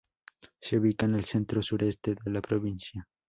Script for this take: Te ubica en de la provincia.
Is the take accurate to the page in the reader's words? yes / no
no